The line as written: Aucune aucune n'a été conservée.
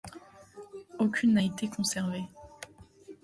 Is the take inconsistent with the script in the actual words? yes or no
yes